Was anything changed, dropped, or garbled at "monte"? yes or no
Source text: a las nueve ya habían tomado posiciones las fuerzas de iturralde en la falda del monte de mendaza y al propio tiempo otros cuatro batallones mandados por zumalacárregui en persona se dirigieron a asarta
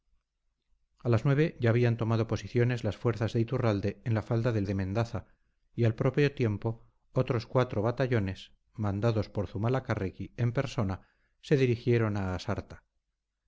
yes